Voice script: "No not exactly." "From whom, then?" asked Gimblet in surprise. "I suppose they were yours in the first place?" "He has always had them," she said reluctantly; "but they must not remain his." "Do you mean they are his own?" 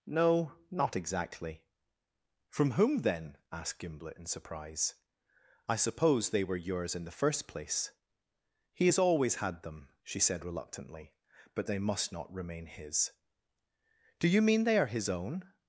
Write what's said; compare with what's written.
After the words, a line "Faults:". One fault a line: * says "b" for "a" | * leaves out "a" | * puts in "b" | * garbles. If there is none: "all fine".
"No not exactly." "From whom, then?" asked Gimblet in surprise. "I suppose they were yours in the first place?" "He has always had them," she said reluctantly; "but they must not remain his." "Do you mean they are his own?"
Faults:
all fine